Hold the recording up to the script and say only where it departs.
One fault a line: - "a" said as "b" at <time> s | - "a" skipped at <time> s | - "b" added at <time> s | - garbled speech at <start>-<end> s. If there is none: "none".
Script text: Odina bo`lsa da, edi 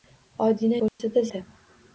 none